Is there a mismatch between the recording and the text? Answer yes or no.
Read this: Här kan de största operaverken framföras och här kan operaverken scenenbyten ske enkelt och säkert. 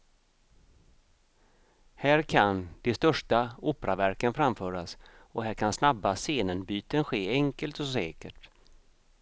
yes